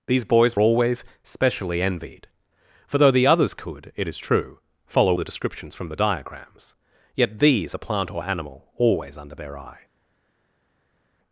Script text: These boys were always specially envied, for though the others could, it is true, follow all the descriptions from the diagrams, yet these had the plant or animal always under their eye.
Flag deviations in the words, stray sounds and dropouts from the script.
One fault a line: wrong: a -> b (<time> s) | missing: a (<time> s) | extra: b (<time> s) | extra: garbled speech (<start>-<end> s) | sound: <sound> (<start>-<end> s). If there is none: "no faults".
missing: were (0.6 s)
missing: all (5.2 s)
missing: had (7.7 s)